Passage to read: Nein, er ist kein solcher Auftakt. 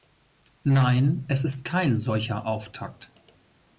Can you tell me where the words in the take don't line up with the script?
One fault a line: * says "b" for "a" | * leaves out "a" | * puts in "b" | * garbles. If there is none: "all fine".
* says "es" for "er"